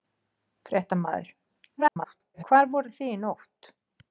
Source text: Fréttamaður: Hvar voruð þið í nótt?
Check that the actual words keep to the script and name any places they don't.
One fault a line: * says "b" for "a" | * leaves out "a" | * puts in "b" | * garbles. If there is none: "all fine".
* garbles